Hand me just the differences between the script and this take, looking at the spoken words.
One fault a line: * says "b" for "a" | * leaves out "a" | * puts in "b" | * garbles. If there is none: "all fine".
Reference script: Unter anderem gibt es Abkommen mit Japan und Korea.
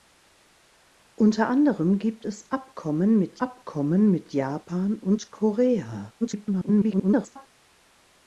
* puts in "Abkommen mit"
* garbles